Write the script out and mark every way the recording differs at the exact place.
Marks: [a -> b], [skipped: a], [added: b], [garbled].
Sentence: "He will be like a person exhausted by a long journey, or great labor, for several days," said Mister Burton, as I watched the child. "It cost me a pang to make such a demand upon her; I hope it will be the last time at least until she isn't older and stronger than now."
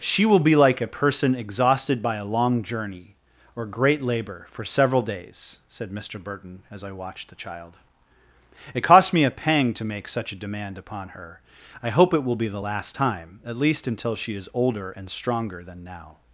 ["He -> She] will be like a person exhausted by a long journey, or great labor, for several days," said Mister Burton, as I watched the child. "It cost me a pang to make such a demand upon her; I hope it will be the last time at least until she [isn't -> is] older and stronger than now."